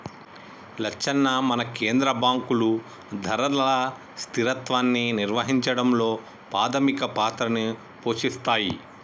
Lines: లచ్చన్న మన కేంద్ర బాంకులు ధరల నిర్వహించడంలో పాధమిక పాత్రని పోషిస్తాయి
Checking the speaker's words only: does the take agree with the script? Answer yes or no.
no